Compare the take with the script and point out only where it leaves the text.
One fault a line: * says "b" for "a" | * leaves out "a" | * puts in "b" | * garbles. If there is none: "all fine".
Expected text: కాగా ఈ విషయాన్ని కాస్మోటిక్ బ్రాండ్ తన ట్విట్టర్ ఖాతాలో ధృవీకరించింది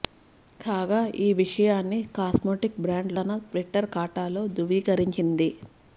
all fine